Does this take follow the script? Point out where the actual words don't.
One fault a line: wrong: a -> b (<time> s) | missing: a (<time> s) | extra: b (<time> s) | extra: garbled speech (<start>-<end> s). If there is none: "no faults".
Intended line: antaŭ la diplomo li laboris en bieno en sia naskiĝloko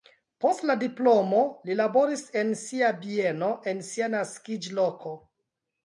wrong: antaŭ -> post (0.5 s)
extra: sia (2.6 s)